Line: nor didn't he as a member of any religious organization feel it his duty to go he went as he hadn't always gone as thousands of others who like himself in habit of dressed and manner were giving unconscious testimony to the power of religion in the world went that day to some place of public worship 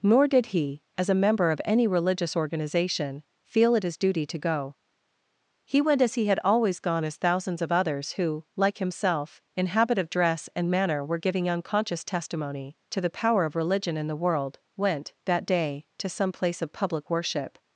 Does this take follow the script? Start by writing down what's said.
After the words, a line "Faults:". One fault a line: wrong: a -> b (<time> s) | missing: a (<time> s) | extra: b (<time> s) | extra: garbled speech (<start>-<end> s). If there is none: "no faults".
nor did he as a member of any religious organization feel it his duty to go he went as he had always gone as thousands of others who like himself in habit of dress and manner were giving unconscious testimony to the power of religion in the world went that day to some place of public worship
Faults:
wrong: didn't -> did (0.3 s)
wrong: hadn't -> had (6.2 s)
wrong: dressed -> dress (10.1 s)